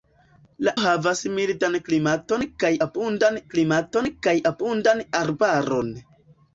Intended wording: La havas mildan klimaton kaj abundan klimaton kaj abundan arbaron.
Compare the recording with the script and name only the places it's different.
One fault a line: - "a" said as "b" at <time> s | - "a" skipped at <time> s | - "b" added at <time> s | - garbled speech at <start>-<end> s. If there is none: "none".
none